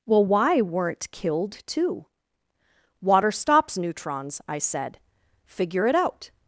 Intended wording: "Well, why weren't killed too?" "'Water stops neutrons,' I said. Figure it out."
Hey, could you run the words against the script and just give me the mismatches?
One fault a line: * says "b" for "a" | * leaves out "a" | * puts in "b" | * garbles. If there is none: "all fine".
all fine